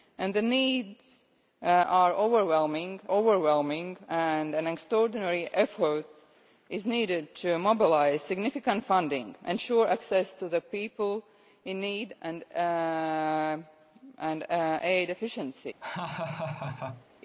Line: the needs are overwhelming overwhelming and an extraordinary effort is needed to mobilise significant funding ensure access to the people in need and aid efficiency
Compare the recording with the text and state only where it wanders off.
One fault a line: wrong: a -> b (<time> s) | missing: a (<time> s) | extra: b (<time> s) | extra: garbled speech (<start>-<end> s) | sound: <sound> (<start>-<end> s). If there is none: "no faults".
sound: laugh (15.8-17.1 s)